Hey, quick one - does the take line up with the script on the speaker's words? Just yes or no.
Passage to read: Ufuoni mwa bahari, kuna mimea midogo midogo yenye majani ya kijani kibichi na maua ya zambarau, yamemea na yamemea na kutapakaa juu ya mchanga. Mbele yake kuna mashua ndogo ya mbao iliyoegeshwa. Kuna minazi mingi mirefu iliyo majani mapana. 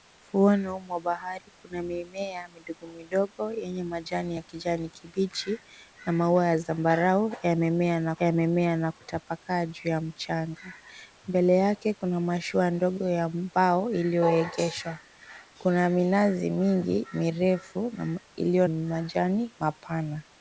yes